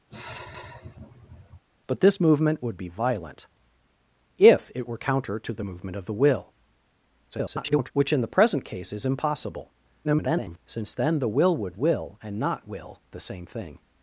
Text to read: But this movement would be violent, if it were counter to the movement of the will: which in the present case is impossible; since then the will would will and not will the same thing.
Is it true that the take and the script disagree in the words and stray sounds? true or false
true